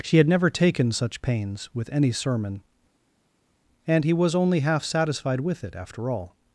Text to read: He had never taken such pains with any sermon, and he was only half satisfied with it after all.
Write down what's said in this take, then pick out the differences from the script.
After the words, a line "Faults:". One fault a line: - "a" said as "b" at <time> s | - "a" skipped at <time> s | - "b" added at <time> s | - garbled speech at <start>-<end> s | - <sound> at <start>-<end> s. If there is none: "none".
She had never taken such pains with any sermon, and he was only half satisfied with it after all.
Faults:
- "He" said as "She" at 0.0 s